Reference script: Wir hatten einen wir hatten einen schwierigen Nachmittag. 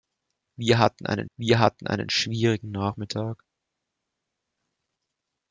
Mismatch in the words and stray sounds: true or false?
false